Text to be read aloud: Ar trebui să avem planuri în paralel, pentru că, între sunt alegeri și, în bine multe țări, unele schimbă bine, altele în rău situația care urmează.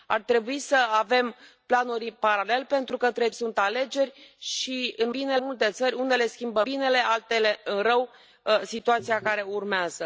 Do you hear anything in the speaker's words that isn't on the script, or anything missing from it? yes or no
no